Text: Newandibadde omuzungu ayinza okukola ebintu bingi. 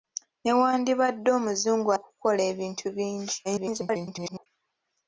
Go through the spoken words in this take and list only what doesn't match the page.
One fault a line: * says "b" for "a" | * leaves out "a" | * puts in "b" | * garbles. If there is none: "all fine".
* leaves out "ayinza"
* garbles